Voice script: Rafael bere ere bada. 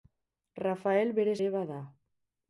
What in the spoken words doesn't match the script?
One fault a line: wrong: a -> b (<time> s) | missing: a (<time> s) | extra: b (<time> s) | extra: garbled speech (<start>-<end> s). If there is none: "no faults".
no faults